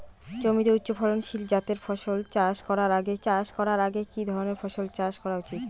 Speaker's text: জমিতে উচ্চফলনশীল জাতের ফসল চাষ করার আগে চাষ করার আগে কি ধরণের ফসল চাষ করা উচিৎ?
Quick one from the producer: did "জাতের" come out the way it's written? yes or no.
yes